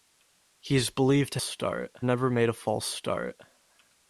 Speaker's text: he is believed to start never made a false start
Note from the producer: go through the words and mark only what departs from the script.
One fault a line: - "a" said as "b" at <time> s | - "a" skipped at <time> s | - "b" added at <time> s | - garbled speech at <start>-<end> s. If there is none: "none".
none